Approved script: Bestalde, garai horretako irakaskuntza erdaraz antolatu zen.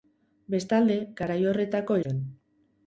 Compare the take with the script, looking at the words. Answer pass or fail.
fail